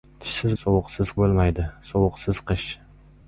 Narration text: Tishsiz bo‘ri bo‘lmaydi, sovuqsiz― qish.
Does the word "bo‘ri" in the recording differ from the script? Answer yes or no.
yes